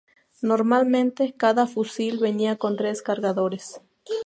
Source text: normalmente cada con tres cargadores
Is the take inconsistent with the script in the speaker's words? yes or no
yes